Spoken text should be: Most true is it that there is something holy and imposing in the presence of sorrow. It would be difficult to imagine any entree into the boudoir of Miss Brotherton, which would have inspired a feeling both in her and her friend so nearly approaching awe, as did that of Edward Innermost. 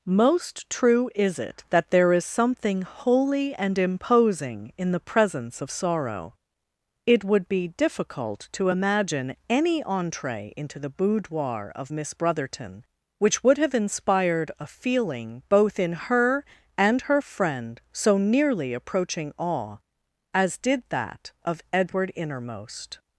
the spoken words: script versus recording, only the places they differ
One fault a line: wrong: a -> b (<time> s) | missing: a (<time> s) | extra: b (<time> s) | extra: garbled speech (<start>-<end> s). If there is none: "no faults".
no faults